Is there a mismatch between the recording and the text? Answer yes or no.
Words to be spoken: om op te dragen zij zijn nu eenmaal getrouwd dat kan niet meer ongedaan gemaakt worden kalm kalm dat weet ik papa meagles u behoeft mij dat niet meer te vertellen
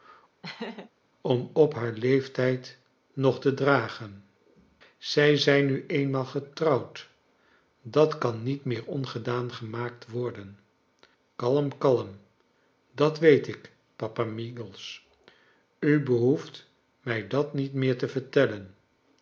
yes